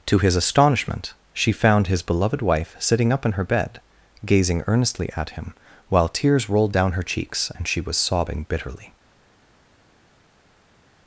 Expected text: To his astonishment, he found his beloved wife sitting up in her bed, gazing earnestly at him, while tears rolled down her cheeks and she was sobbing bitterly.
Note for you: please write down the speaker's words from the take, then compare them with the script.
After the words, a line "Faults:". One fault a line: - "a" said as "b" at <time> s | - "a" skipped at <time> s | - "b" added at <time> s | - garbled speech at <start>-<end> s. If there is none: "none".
To his astonishment, she found his beloved wife sitting up in her bed, gazing earnestly at him, while tears rolled down her cheeks and she was sobbing bitterly.
Faults:
- "he" said as "she" at 1.3 s